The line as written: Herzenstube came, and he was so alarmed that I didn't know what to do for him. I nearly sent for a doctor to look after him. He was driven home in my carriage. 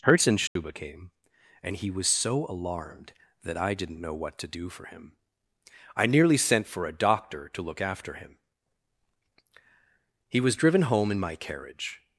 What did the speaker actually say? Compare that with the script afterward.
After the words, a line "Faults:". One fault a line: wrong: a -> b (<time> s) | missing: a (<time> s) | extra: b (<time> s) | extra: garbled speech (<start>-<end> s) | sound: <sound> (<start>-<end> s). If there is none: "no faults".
Herzenstube came, and he was so alarmed that I didn't know what to do for him. I nearly sent for a doctor to look after him. He was driven home in my carriage.
Faults:
sound: dropout (0.5-0.6 s)